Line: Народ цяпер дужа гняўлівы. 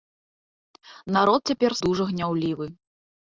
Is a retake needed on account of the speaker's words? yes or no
no